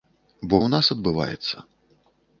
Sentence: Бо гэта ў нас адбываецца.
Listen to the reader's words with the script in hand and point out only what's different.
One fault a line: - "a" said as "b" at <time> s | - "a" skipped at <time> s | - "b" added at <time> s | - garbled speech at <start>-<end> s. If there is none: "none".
- "гэта" skipped at 0.6 s